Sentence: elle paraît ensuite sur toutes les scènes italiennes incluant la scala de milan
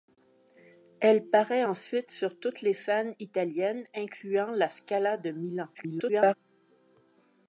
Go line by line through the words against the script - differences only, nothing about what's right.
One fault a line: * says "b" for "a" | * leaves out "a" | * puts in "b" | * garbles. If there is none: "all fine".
* garbles